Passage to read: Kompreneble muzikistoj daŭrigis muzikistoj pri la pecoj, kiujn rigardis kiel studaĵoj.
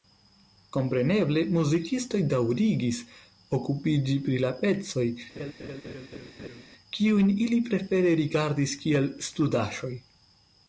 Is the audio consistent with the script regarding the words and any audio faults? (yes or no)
no